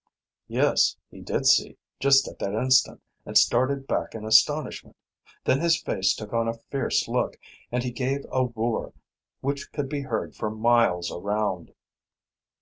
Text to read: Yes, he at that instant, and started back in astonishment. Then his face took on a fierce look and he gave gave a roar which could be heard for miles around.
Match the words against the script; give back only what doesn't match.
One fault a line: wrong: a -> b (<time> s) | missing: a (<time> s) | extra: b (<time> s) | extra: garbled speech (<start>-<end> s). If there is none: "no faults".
extra: did see just (1.2 s)
missing: gave (8.2 s)